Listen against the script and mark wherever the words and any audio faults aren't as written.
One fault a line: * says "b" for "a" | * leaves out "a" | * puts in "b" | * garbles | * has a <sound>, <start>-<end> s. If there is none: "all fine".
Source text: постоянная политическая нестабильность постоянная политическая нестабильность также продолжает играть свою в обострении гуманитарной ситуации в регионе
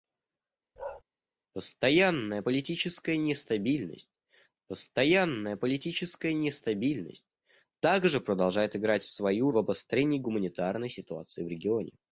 * has a bark, 0.8-1.0 s